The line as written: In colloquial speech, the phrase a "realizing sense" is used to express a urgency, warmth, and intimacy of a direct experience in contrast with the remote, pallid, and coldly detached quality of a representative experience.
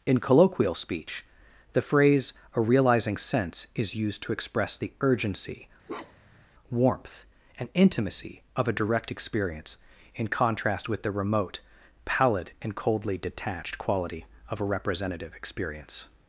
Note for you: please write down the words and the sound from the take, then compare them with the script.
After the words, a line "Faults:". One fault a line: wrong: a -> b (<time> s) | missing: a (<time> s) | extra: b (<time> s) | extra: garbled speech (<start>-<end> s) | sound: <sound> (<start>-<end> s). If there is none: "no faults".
In colloquial speech, the phrase a "realizing sense" is used to express the urgency, warmth, and intimacy of a direct experience in contrast with the remote, pallid, and coldly detached quality of a representative experience.
Faults:
wrong: a -> the (4.8 s)
sound: bark (5.9-6.5 s)